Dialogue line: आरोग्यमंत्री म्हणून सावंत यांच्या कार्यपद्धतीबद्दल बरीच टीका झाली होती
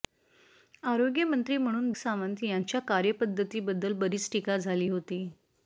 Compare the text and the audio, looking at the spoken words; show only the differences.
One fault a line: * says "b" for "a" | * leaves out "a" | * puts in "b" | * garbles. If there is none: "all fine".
all fine